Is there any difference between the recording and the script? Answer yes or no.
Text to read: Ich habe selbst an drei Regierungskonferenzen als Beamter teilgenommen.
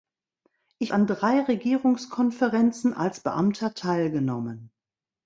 yes